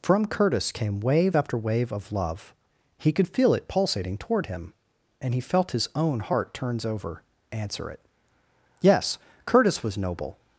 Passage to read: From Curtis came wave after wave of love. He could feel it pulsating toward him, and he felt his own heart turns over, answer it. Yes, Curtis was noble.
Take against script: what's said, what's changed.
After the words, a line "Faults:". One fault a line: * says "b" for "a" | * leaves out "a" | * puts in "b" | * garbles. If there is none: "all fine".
From Curtis came wave after wave of love. He could feel it pulsating toward him, and he felt his own heart turns over, answer it. Yes, Curtis was noble.
Faults:
all fine